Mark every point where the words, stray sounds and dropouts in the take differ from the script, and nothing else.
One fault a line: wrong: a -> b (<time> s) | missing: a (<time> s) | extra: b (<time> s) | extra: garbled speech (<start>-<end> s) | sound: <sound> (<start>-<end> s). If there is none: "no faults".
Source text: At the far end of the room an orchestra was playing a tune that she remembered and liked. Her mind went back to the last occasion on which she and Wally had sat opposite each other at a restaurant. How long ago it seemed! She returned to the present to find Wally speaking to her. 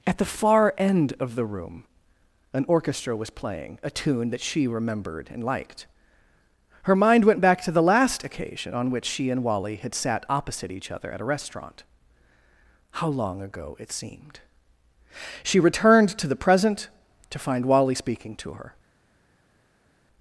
no faults